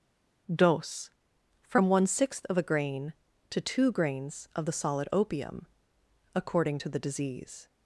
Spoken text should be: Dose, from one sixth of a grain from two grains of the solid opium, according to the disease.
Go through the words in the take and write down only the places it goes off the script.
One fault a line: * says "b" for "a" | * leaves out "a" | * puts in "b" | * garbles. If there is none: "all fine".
* says "to" for "from"